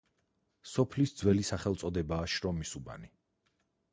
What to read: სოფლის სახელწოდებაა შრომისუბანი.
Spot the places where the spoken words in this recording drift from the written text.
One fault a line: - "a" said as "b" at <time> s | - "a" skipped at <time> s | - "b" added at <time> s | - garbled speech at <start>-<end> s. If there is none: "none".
- "ძველი" added at 1.2 s